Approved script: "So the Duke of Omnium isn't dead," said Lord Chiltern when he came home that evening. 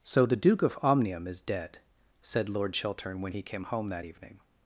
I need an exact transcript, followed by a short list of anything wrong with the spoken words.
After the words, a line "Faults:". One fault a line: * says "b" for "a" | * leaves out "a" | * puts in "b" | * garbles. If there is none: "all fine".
"So the Duke of Omnium is dead," said Lord Chiltern when he came home that evening.
Faults:
* says "is" for "isn't"